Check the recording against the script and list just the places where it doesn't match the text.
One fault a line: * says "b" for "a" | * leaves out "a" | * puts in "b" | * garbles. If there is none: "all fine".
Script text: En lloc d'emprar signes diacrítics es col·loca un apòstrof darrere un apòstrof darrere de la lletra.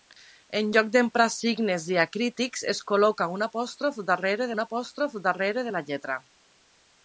all fine